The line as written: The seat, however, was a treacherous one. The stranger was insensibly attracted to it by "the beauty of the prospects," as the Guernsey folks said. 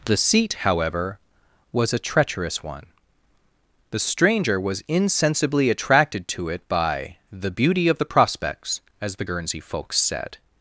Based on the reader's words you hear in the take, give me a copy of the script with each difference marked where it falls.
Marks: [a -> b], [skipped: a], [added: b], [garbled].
The seat, however, was a treacherous one. The stranger was insensibly attracted to it by "the beauty of the prospects," as the Guernsey folks said.